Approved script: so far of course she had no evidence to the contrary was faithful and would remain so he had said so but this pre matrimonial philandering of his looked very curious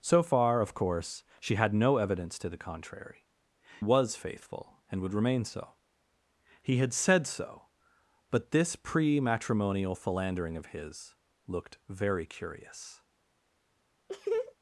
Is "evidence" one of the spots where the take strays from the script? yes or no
no